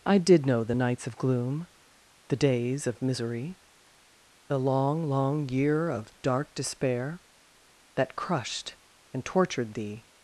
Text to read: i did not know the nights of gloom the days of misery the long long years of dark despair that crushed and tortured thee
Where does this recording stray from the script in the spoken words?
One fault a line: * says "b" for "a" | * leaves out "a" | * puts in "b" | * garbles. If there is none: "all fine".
* leaves out "not"
* says "year" for "years"